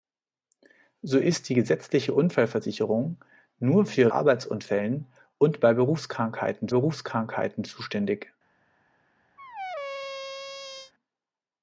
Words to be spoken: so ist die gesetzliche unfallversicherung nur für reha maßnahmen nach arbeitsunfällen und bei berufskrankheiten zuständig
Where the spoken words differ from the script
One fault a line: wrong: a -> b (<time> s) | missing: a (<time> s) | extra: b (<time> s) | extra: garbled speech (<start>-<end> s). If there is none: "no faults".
missing: reha maßnahmen nach (4.1 s)
extra: berufskrankheiten (6.7 s)